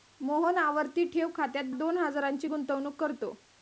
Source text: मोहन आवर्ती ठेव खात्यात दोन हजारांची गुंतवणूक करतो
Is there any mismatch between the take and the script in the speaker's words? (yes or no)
no